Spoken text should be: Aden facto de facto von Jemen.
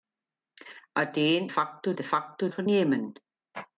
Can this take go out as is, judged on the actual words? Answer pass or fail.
pass